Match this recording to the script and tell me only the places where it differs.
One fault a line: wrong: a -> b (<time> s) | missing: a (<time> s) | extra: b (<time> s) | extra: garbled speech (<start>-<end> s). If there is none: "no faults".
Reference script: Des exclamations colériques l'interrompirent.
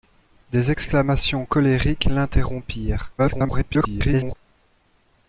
extra: garbled speech (3.2-4.3 s)